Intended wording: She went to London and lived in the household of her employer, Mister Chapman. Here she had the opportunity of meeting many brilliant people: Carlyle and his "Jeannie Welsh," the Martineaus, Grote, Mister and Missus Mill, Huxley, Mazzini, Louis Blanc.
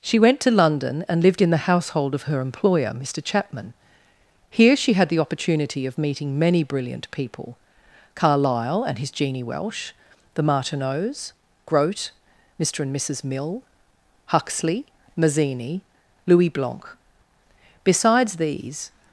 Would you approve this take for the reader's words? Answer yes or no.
no